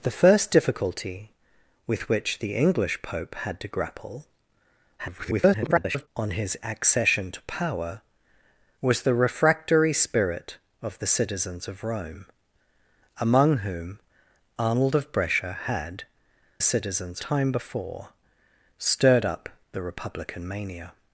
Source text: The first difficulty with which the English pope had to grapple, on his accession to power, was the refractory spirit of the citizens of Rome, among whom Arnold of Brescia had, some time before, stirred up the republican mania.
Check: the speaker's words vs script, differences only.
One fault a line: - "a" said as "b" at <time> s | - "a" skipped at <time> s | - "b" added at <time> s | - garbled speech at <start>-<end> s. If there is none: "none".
- garbled speech at 5.0-6.1 s
- "some" said as "citizens" at 16.6 s